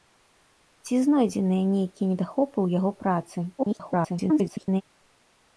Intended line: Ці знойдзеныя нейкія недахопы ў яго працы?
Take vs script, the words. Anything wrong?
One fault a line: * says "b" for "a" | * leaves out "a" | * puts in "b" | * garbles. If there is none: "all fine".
* garbles